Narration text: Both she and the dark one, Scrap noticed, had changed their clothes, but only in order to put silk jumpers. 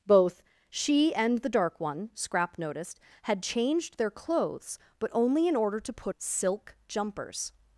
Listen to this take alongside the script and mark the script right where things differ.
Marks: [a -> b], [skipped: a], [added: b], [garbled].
Both she and the dark one, Scrap noticed, had changed their clothes, but only in order to put silk jumpers.